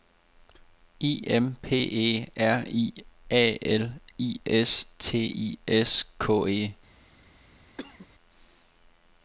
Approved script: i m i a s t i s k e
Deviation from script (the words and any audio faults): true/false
true